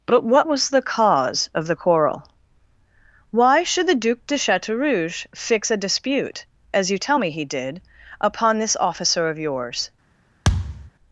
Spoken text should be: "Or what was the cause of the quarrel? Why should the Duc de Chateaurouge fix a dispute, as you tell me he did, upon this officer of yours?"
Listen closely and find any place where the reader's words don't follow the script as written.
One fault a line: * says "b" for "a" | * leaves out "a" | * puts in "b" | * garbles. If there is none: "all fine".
* says "But" for "Or"